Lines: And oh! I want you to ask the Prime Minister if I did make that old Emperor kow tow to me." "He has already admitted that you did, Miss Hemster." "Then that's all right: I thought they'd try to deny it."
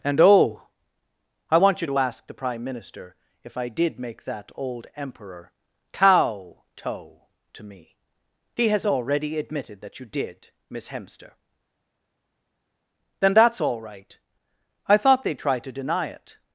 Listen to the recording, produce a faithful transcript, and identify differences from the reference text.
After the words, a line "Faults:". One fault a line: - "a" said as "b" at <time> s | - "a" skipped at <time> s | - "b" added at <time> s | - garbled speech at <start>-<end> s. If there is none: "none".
And oh! I want you to ask the Prime Minister if I did make that old Emperor kow tow to me." "He has already admitted that you did, Miss Hemster." "Then that's all right: I thought they'd try to deny it."
Faults:
none